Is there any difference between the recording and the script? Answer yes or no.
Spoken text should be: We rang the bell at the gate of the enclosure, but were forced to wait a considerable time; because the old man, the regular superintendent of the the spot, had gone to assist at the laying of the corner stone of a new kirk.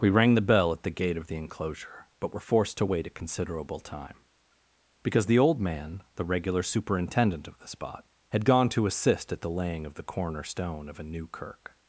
yes